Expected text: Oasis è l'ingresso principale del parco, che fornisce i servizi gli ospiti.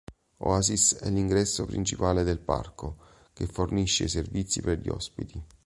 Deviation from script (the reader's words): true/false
true